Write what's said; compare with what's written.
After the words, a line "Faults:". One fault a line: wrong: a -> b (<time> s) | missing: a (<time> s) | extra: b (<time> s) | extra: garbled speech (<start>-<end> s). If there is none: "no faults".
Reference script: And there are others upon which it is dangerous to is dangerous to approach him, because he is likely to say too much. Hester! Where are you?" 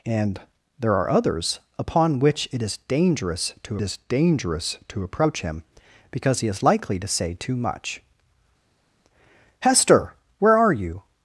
And there are others upon which it is dangerous to is dangerous to approach him, because he is likely to say too much. Hester! Where are you?"
Faults:
no faults